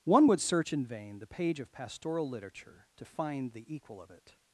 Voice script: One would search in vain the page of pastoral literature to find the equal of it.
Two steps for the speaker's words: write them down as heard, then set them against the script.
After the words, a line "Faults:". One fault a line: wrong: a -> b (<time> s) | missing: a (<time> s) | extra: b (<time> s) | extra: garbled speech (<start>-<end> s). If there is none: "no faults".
One would search in vain the page of pastoral literature to find the equal of it.
Faults:
no faults